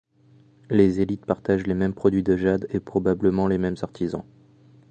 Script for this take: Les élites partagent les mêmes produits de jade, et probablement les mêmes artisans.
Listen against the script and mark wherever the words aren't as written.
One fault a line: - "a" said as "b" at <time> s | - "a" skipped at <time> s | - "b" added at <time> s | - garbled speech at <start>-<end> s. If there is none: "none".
none